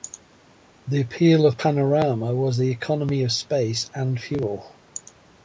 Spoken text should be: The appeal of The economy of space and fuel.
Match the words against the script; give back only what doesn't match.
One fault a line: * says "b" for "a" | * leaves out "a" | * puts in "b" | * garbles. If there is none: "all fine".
* puts in "Panorama was"